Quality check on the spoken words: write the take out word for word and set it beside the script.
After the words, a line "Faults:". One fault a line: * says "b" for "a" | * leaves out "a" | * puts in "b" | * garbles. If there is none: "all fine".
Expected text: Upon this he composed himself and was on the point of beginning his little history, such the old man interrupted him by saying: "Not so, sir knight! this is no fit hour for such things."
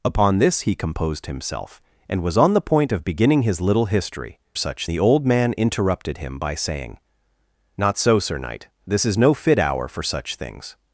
Upon this he composed himself and was on the point of beginning his little history, such the old man interrupted him by saying: "Not so, sir knight! this is no fit hour for such things."
Faults:
all fine